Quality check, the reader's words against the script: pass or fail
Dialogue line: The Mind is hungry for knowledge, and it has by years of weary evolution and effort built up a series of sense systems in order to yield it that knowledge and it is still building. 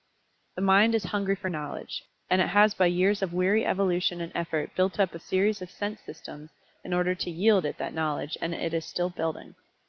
pass